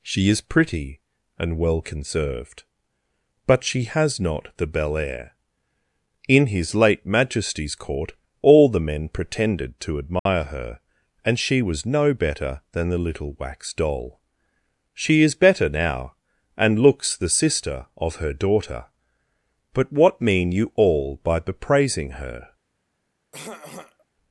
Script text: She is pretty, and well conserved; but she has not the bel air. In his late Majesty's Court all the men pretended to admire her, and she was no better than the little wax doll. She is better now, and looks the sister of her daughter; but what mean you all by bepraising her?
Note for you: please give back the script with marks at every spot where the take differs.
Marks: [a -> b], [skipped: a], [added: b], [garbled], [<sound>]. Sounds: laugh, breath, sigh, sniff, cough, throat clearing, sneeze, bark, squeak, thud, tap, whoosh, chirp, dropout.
She is pretty, and well conserved; but she has not the bel air. In his late Majesty's Court all the men pretended to admire [dropout] her, and she was no better than the little wax doll. She is better now, and looks the sister of her daughter; but what mean you all by bepraising her? [throat clearing]